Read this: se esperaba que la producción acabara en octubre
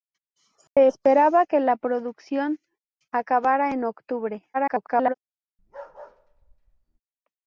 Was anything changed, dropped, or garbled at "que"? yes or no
no